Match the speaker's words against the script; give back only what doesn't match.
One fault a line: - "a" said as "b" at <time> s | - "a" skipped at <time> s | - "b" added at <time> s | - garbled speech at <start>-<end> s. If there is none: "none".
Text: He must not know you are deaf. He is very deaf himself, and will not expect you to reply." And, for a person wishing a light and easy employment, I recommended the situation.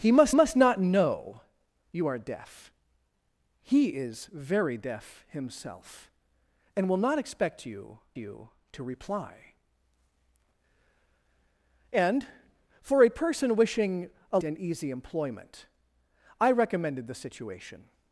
- "must" added at 0.3 s
- "you" added at 8.2 s
- "light" skipped at 14.4 s